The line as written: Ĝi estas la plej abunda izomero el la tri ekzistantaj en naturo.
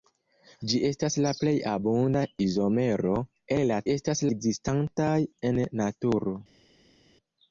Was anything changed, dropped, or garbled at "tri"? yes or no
yes